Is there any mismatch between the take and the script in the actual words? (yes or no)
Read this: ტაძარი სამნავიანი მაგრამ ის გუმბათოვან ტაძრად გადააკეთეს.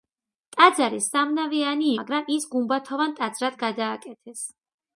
no